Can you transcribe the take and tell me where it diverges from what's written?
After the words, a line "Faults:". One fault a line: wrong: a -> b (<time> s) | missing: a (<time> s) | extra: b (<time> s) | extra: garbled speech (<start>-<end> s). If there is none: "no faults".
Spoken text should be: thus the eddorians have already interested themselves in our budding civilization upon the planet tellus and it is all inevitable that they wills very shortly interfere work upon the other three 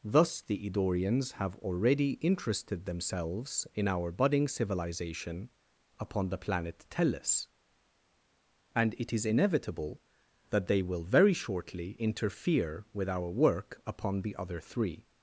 thus the eddorians have already interested themselves in our budding civilization upon the planet tellus and it is inevitable that they will very shortly interfere with our work upon the other three
Faults:
missing: all (9.2 s)
wrong: wills -> will (10.8 s)
extra: with our (12.9 s)